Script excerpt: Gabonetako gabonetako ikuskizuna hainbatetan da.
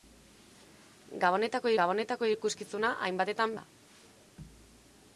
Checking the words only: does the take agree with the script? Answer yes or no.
yes